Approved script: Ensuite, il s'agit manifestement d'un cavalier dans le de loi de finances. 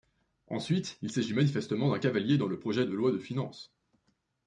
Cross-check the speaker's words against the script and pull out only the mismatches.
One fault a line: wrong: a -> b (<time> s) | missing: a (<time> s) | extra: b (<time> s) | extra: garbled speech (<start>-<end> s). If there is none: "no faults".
extra: projet (2.6 s)